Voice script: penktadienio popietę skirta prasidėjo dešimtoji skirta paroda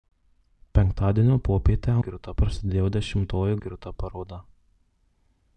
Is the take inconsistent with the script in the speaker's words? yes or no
no